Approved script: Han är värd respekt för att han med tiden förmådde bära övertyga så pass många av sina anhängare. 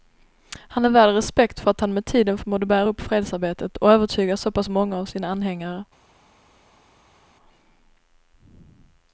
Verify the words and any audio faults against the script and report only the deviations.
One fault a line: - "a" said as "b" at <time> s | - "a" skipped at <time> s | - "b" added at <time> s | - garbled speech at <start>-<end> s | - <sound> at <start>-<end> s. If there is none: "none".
- "upp fredsarbetet och" added at 2.9 s